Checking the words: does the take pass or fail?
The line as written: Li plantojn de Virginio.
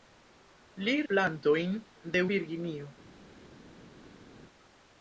pass